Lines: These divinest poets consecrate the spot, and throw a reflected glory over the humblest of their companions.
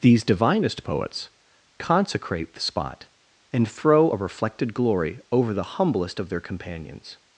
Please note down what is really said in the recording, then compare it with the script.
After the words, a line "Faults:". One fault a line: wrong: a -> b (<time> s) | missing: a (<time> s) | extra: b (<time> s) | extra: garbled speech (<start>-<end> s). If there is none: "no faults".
These divinest poets consecrate the spot, and throw a reflected glory over the humblest of their companions.
Faults:
no faults